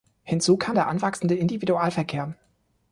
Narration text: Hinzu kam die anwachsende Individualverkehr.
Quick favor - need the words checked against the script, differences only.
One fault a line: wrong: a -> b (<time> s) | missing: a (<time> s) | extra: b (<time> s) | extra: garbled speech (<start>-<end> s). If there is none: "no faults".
wrong: die -> der (0.7 s)